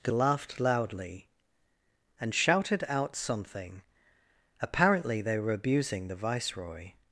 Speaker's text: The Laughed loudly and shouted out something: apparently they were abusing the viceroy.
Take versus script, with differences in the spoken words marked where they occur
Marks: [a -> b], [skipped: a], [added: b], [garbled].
The Laughed loudly and shouted out something: apparently they were abusing the viceroy.